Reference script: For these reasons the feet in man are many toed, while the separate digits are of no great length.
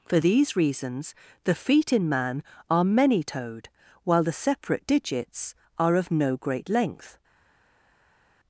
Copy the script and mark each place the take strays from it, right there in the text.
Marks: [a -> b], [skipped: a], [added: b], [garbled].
For these reasons the feet in man are many toed, while the separate digits are of no great length.